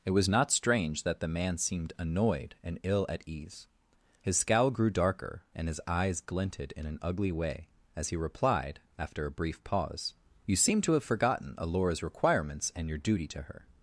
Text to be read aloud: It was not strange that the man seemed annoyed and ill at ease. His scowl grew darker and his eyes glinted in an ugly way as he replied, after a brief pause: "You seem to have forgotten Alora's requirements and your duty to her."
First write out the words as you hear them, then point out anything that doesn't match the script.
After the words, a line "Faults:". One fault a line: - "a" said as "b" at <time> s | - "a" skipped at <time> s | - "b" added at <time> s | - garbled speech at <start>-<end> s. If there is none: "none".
It was not strange that the man seemed annoyed and ill at ease. His scowl grew darker and his eyes glinted in an ugly way as he replied, after a brief pause: "You seem to have forgotten Alora's requirements and your duty to her."
Faults:
none